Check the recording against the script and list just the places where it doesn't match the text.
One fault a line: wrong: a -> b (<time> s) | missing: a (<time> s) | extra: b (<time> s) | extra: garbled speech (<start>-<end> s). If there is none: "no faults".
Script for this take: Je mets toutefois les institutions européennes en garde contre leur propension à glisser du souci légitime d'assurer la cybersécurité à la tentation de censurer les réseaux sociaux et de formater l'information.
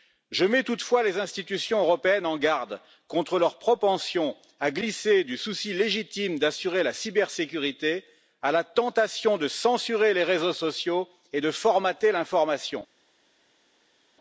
no faults